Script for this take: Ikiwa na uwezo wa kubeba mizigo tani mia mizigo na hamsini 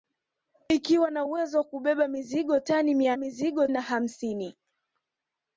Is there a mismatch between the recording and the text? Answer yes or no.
no